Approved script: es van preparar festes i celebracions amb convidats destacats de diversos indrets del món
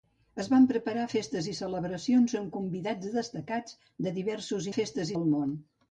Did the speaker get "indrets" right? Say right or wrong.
wrong